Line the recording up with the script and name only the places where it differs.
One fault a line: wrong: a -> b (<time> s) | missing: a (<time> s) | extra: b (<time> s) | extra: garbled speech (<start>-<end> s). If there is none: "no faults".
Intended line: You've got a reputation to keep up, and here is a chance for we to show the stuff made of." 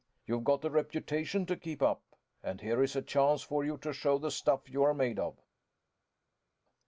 wrong: we -> you (3.6 s)
extra: you are (4.7 s)